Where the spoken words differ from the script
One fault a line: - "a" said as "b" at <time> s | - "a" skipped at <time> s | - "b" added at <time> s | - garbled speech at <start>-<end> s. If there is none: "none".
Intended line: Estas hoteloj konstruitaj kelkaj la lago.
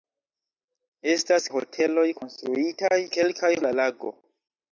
none